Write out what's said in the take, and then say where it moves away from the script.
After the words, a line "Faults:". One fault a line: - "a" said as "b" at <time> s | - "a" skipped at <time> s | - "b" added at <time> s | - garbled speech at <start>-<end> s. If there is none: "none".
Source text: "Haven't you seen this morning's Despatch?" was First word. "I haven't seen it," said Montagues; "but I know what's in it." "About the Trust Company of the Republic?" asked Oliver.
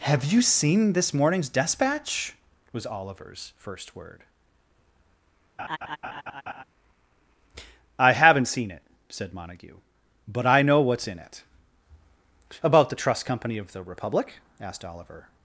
"Have you seen this morning's Despatch?" was Oliver's first word. "I haven't seen it," said Montague; "but I know what's in it." "About the Trust Company of the Republic?" asked Oliver.
Faults:
- "Haven't" said as "Have" at 0.0 s
- "Oliver's" added at 2.9 s
- "Montagues" said as "Montague" at 9.3 s